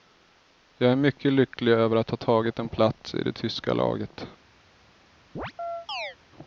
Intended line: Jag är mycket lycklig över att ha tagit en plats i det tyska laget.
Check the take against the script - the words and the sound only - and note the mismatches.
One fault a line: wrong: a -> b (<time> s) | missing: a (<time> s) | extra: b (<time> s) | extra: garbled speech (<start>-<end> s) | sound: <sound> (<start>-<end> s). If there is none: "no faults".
sound: chirp (5.3-6.2 s)